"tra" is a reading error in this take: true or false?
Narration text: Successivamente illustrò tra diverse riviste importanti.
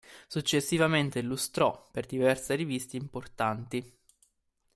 true